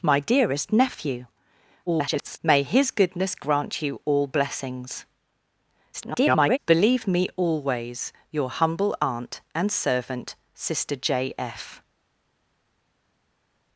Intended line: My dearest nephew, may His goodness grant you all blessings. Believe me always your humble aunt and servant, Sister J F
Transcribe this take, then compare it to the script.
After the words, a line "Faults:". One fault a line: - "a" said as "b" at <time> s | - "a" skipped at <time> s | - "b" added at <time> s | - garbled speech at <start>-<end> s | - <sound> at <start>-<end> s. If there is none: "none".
My dearest nephew, [garbled] may His goodness grant you all blessings. [garbled] Believe me always your humble aunt and servant, Sister J F
Faults:
- garbled speech at 1.9-2.4 s
- garbled speech at 5.9-6.6 s